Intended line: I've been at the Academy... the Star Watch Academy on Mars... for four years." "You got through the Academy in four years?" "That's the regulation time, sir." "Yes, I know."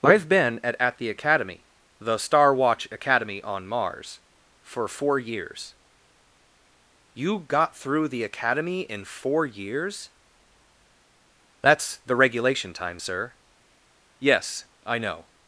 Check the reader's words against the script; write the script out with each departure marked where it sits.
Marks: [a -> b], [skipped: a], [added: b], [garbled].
I've been at [added: at] the Academy... the Star Watch Academy on Mars... for four years." "You got through the Academy in four years?" "That's the regulation time, sir." "Yes, I know."